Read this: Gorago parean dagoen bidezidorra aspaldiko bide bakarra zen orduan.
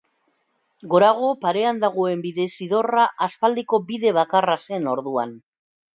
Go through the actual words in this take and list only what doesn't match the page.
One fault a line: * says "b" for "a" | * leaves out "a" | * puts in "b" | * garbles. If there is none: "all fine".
all fine